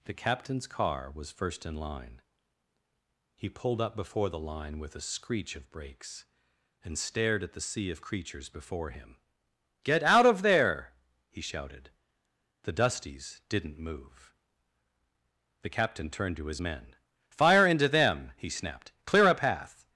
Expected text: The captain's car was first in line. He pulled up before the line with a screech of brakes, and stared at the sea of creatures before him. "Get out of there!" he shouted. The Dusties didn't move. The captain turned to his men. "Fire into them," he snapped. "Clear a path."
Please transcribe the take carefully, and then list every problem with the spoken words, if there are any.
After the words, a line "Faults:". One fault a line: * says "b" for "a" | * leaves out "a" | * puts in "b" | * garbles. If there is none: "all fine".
The captain's car was first in line. He pulled up before the line with a screech of brakes, and stared at the sea of creatures before him. "Get out of there!" he shouted. The Dusties didn't move. The captain turned to his men. "Fire into them," he snapped. "Clear a path."
Faults:
all fine